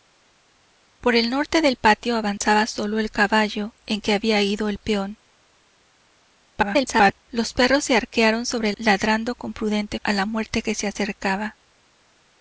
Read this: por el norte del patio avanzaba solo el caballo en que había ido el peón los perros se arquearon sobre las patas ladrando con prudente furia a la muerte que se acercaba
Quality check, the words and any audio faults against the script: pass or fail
fail